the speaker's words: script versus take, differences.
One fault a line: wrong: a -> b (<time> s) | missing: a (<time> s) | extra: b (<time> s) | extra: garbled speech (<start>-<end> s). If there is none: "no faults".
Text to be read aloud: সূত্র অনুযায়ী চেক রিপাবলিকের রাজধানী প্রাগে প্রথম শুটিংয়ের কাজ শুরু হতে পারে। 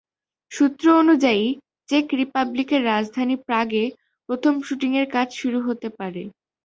no faults